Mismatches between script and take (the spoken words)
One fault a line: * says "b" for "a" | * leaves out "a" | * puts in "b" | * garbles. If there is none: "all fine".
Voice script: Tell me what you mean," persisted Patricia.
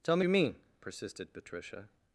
* leaves out "what"